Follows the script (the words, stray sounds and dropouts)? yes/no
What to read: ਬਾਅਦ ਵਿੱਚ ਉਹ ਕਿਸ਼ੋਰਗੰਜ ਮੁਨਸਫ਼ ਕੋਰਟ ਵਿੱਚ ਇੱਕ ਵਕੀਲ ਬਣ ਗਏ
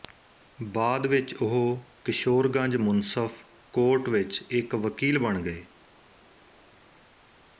yes